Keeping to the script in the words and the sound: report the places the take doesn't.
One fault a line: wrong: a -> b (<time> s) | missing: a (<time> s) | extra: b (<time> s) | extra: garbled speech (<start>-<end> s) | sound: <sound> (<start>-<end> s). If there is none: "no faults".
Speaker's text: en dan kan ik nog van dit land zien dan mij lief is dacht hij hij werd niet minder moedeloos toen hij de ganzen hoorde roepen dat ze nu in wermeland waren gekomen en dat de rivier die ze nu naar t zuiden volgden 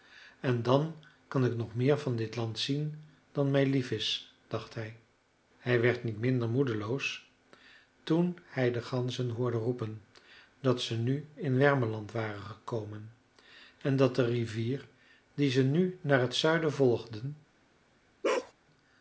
extra: meer (1.8 s)
sound: bark (18.2-18.5 s)